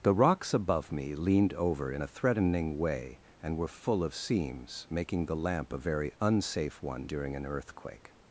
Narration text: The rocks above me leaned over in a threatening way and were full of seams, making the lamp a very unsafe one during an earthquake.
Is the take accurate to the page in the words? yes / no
yes